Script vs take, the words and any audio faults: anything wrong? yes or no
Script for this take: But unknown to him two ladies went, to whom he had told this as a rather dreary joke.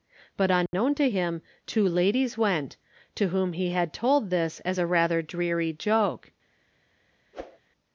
yes